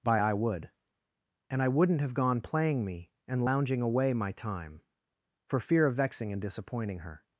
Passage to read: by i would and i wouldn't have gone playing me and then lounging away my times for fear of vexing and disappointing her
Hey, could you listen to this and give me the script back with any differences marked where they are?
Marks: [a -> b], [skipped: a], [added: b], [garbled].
by i would and i wouldn't have gone playing me and [skipped: then] lounging away my [times -> time] for fear of vexing and disappointing her